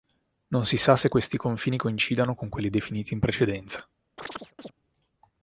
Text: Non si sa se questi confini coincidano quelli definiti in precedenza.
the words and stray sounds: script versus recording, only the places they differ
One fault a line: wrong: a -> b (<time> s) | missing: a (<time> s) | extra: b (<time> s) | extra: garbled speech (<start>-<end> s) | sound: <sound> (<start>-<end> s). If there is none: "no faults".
extra: con (2.3 s)
sound: chirp (4.2-4.7 s)